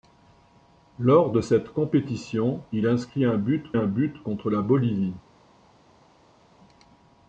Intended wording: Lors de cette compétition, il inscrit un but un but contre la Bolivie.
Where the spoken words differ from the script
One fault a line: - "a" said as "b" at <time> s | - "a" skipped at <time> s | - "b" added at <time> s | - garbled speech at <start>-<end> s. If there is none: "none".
none